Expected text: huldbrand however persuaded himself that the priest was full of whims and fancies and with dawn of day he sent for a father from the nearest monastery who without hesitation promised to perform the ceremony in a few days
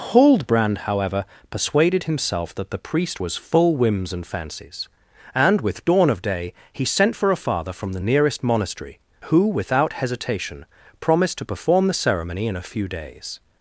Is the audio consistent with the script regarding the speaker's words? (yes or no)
no